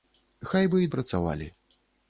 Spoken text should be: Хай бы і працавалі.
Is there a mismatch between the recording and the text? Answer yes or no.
no